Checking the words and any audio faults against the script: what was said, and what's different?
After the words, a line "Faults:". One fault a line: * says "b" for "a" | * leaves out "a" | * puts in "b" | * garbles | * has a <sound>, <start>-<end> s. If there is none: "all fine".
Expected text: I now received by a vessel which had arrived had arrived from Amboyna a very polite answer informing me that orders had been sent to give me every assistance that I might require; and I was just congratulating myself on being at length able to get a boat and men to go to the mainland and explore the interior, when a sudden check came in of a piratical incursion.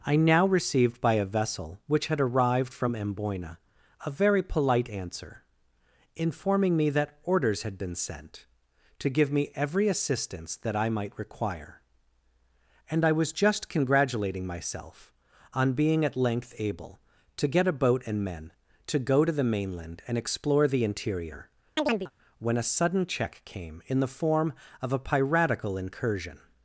I now received by a vessel which had arrived from Amboyna a very polite answer informing me that orders had been sent to give me every assistance that I might require; and I was just congratulating myself on being at length able to get a boat and men to go to the mainland and explore the interior, when a sudden check came in the form of a piratical incursion.
Faults:
* leaves out "had arrived"
* has a chirp, 21.8-22.1 s
* puts in "the form"